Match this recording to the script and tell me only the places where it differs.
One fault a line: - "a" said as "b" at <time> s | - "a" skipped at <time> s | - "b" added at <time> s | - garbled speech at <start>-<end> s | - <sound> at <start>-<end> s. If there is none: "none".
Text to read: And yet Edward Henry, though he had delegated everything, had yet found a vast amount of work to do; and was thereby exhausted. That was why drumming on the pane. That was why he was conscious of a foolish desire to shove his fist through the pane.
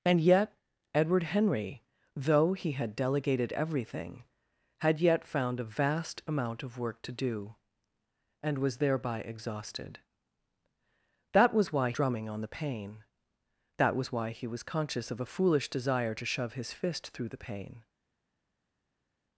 none